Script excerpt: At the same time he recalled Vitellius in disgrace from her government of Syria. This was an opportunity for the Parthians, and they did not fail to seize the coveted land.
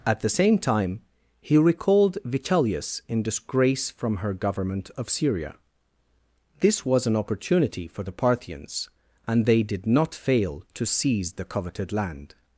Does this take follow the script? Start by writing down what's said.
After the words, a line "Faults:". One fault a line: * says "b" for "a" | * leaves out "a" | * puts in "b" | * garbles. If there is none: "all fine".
At the same time he recalled Vitellius in disgrace from her government of Syria. This was an opportunity for the Parthians, and they did not fail to seize the coveted land.
Faults:
all fine